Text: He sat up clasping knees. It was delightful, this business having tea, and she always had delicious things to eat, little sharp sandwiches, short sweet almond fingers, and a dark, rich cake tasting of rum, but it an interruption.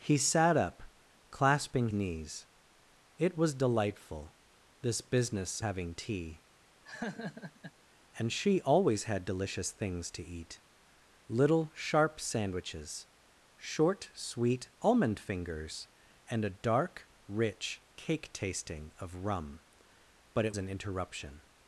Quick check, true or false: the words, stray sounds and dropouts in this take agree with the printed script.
false